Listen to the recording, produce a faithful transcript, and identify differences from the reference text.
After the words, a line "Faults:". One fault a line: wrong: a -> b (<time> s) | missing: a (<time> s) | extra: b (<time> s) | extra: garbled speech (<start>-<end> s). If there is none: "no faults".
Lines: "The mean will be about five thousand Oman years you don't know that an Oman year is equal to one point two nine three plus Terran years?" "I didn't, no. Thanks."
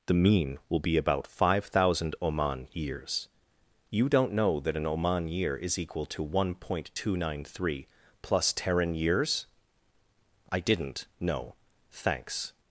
"The mean will be about five thousand Oman years you don't know that an Oman year is equal to one point two nine three plus Terran years?" "I didn't, no. Thanks."
Faults:
no faults